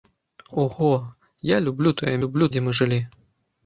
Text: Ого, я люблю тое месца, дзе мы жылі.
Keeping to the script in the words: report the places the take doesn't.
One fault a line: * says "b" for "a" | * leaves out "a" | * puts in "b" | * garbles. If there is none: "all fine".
* says "люблю" for "месца"